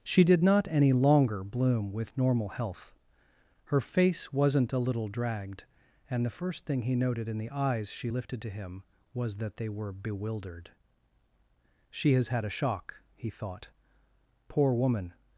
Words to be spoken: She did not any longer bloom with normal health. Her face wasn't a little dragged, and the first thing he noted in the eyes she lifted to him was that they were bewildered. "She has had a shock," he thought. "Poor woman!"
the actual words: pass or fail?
pass